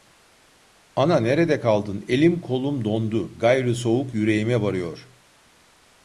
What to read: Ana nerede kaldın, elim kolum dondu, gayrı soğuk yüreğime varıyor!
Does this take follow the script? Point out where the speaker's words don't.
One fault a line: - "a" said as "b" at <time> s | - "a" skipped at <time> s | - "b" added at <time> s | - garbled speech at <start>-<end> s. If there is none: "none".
none